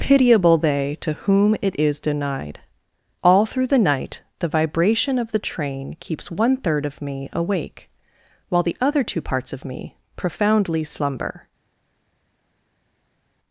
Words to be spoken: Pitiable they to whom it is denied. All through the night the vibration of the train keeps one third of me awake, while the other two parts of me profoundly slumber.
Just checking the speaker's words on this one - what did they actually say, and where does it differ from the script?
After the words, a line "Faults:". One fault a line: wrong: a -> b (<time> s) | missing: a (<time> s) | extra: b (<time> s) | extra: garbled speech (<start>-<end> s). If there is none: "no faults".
Pitiable they to whom it is denied. All through the night the vibration of the train keeps one third of me awake, while the other two parts of me profoundly slumber.
Faults:
no faults